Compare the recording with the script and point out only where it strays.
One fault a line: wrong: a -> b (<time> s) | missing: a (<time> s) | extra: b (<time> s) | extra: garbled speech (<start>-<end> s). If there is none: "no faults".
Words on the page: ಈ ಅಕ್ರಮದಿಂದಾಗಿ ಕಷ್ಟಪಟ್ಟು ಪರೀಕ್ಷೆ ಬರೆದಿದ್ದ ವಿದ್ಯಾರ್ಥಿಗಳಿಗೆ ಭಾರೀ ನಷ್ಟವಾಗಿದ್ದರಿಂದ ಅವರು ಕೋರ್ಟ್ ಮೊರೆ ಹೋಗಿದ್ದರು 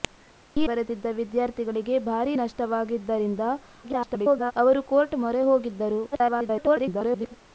missing: ಅಕ್ರಮದಿಂದಾಗಿ ಕಷ್ಟಪಟ್ಟು ಪರೀಕ್ಷೆ (0.7 s)
extra: garbled speech (3.8-4.5 s)
extra: garbled speech (6.1-7.4 s)